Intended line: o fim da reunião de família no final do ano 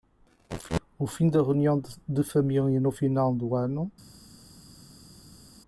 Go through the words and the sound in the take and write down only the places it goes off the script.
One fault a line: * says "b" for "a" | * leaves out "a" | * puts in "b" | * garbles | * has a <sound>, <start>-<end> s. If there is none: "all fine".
all fine